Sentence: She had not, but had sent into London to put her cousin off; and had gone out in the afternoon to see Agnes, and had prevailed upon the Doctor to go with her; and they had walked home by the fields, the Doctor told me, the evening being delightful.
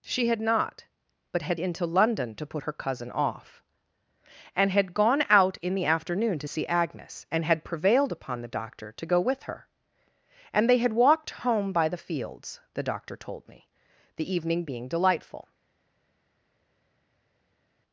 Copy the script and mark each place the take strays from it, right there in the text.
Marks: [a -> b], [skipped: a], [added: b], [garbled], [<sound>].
She had not, but had [skipped: sent] into London to put her cousin off; and had gone out in the afternoon to see Agnes, and had prevailed upon the Doctor to go with her; and they had walked home by the fields, the Doctor told me, the evening being delightful.